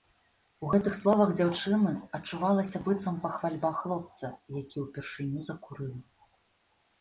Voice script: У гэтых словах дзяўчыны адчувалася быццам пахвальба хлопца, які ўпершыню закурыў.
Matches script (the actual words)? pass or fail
pass